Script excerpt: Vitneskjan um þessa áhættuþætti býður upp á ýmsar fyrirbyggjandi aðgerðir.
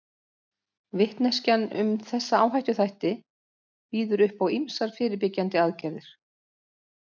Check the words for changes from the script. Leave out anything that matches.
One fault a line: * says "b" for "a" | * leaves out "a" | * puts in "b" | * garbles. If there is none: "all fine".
all fine